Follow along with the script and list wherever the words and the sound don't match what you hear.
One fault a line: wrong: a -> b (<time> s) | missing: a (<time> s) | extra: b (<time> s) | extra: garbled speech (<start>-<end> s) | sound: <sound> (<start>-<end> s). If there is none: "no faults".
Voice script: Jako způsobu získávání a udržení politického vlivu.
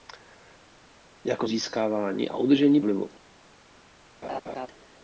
missing: způsobu (1.5 s)
missing: politického (2.8 s)
sound: laugh (4.2-4.7 s)